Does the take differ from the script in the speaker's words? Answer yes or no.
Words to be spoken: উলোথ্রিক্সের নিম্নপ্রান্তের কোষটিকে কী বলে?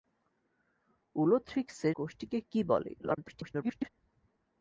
yes